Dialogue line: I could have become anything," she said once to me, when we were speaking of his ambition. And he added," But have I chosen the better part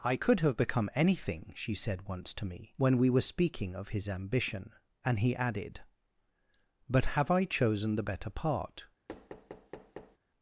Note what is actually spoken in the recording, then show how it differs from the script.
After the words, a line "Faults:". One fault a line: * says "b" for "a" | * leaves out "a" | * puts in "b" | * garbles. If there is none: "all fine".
I could have become anything," she said once to me, when we were speaking of his ambition. And he added," But have I chosen the better part
Faults:
all fine